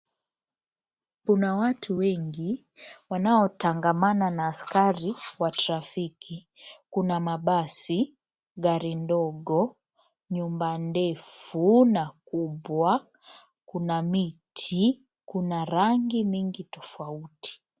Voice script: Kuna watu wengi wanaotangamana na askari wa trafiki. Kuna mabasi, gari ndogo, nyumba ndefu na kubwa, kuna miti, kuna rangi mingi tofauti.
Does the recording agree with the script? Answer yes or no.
yes